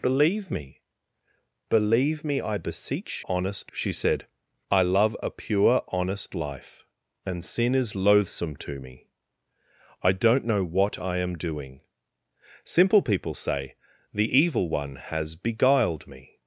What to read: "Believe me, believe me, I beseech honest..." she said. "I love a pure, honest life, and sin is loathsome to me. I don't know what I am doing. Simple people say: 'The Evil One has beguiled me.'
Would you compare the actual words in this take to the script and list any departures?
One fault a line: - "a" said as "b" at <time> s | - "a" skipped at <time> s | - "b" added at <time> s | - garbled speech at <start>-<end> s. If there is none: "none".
none